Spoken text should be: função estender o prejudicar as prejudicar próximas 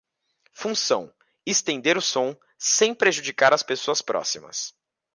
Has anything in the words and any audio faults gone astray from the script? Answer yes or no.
yes